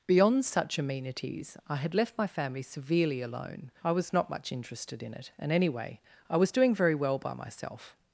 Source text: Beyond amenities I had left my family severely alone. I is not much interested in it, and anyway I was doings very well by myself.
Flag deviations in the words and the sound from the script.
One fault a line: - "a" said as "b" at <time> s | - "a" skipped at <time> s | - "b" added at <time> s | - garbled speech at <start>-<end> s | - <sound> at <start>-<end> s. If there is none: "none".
- "such" added at 0.5 s
- "is" said as "was" at 3.9 s
- "doings" said as "doing" at 6.5 s